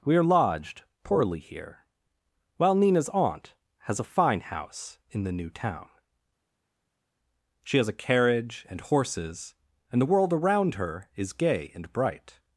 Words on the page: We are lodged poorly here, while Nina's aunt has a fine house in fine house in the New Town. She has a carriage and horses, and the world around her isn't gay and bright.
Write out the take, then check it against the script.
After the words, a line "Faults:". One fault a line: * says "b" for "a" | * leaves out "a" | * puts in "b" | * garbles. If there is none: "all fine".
We are lodged poorly here, while Nina's aunt has a fine house in the New Town. She has a carriage and horses, and the world around her is gay and bright.
Faults:
* leaves out "fine house in"
* says "is" for "isn't"